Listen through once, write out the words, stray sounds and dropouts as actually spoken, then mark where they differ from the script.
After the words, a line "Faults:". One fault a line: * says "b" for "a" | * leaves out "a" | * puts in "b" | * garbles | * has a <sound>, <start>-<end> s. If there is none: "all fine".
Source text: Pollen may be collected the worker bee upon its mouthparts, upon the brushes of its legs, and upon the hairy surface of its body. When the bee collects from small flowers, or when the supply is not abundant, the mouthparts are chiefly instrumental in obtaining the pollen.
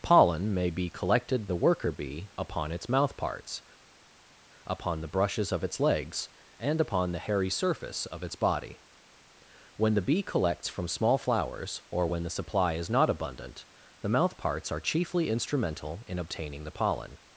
Pollen may be collected the worker bee upon its mouthparts, upon the brushes of its legs, and upon the hairy surface of its body. When the bee collects from small flowers, or when the supply is not abundant, the mouthparts are chiefly instrumental in obtaining the pollen.
Faults:
all fine